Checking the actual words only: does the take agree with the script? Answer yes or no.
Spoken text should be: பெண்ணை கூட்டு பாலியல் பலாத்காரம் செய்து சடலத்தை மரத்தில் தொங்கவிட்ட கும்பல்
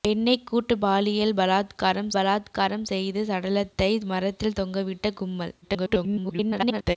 no